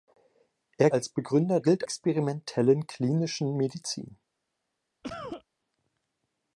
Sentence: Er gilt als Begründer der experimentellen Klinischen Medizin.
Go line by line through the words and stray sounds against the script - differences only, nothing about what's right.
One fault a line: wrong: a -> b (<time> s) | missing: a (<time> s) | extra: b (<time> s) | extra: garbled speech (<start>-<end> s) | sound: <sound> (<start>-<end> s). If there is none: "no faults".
missing: gilt (0.9 s)
wrong: der -> gilt (1.6 s)
sound: cough (5.0-5.4 s)